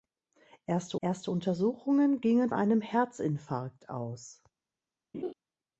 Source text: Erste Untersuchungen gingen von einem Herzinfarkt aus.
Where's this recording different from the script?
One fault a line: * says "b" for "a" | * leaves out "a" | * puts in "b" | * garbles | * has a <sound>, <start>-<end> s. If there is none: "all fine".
* puts in "erste"
* leaves out "von"
* has a laugh, 5.1-5.3 s